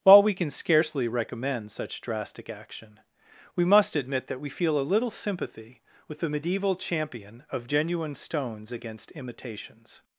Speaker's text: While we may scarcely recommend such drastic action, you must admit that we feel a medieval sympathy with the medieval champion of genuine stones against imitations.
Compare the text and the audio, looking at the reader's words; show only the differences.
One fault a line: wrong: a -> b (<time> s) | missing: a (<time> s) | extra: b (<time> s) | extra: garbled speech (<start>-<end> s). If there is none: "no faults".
wrong: may -> can (0.3 s)
wrong: you -> we (3.5 s)
wrong: medieval -> little (4.8 s)